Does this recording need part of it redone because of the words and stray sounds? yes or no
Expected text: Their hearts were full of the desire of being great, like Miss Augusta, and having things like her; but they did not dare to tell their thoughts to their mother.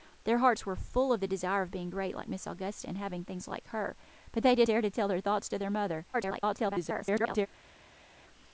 yes